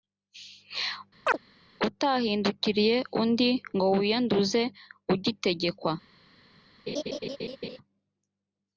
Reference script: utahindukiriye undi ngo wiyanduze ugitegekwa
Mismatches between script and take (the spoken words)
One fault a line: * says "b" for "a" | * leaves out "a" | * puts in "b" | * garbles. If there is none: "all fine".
all fine